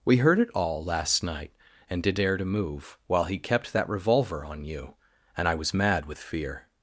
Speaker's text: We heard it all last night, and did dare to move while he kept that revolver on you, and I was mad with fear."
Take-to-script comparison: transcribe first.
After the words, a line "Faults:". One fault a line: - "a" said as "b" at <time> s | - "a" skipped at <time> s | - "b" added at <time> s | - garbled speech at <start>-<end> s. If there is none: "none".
We heard it all last night, and did dare to move while he kept that revolver on you, and I was mad with fear."
Faults:
none